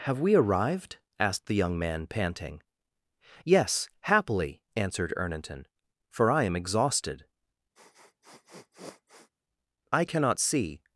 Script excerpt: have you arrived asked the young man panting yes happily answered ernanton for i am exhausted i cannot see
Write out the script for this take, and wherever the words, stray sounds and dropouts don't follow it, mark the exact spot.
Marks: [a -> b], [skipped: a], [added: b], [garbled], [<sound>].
have [you -> we] arrived asked the young man panting yes happily answered ernanton for i am exhausted [sniff] i cannot see